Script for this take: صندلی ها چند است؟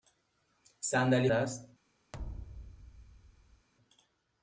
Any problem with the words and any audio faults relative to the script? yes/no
yes